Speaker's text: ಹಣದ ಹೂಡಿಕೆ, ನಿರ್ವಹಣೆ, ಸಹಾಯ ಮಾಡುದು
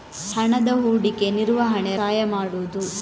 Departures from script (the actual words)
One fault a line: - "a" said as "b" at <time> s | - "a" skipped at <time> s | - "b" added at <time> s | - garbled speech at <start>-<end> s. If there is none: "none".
none